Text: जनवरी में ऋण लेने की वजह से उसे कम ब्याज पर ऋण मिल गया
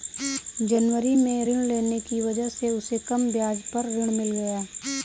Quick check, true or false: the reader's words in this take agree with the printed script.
true